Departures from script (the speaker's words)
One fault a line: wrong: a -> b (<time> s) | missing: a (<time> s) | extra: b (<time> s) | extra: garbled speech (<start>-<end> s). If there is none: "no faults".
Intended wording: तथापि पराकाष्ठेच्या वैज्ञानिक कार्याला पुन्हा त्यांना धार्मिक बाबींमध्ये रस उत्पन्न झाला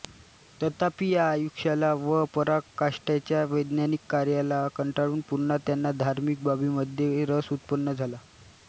extra: या आयुष्याला व (1.1 s)
extra: कंटाळून (4.8 s)